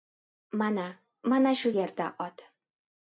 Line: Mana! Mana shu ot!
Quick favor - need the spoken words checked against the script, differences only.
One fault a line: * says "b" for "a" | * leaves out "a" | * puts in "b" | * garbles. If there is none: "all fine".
* puts in "yerda"